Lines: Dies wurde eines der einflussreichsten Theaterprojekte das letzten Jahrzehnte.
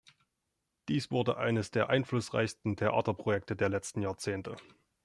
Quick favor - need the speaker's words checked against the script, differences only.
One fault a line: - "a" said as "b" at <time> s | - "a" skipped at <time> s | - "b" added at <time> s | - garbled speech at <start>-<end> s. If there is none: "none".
- "das" said as "der" at 3.5 s